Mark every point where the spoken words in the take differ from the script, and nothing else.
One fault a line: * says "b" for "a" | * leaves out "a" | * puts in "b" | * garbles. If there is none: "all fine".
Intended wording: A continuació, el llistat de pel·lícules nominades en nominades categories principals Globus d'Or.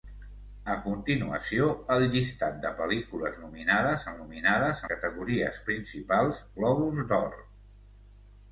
all fine